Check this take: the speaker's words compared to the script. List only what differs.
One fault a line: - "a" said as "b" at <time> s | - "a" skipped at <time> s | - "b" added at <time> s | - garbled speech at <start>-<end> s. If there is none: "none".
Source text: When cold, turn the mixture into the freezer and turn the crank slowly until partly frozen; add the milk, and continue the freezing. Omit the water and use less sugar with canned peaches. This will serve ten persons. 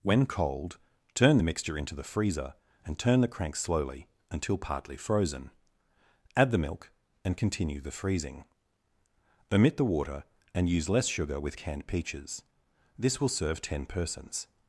none